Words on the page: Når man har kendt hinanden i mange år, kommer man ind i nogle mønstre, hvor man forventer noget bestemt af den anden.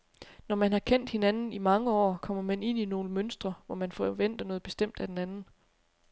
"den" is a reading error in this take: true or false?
false